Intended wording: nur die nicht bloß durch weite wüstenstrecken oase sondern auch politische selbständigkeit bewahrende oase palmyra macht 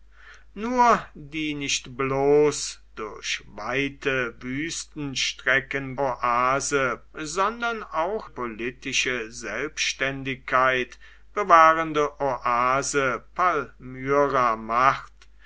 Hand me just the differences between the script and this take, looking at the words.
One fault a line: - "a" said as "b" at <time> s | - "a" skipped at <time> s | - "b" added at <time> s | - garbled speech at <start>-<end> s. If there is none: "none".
none